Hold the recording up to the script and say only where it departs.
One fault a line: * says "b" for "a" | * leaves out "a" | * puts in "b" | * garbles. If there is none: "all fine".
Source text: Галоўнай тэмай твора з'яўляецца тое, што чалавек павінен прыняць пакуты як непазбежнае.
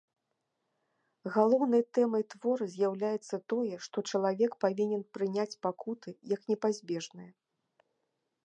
all fine